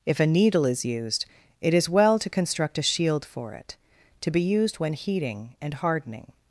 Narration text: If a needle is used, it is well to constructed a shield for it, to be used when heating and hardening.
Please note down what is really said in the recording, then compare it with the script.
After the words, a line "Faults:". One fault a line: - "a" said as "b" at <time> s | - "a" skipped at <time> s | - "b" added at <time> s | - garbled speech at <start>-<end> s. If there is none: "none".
If a needle is used, it is well to construct a shield for it, to be used when heating and hardening.
Faults:
- "constructed" said as "construct" at 2.3 s